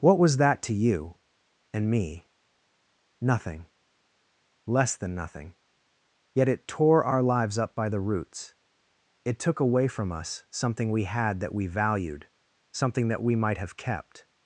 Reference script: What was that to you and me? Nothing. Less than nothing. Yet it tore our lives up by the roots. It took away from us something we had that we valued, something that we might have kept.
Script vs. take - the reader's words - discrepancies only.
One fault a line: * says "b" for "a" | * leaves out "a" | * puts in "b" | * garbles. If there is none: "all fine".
all fine